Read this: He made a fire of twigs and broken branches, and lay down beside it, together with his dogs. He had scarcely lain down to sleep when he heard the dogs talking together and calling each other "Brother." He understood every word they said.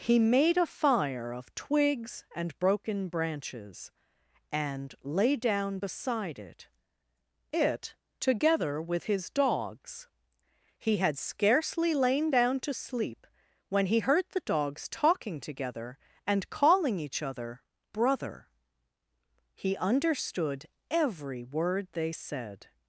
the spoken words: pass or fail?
fail